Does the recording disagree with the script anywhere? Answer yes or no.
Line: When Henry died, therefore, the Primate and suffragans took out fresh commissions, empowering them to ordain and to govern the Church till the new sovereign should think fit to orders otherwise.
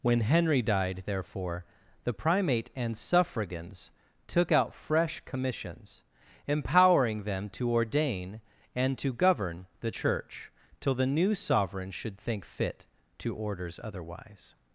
no